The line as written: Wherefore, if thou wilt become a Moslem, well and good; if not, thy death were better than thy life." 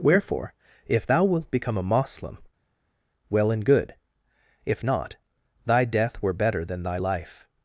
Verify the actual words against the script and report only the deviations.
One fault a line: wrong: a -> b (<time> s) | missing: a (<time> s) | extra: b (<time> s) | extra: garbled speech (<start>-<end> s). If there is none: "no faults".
no faults